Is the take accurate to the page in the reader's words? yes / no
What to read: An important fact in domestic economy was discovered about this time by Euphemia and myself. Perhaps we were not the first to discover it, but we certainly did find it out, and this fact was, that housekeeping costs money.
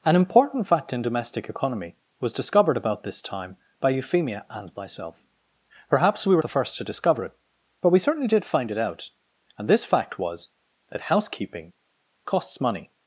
no